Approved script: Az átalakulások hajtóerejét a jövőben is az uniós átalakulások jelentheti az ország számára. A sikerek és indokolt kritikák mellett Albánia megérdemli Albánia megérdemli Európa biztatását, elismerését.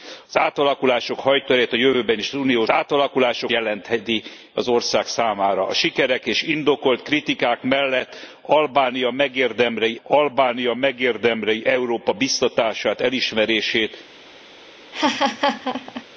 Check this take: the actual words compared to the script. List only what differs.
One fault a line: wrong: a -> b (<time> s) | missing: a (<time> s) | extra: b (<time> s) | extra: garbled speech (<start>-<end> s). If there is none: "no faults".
no faults